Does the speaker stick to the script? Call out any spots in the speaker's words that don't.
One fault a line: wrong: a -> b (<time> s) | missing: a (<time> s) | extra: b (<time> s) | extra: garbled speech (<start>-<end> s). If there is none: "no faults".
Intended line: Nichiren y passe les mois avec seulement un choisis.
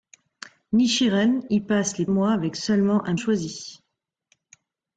no faults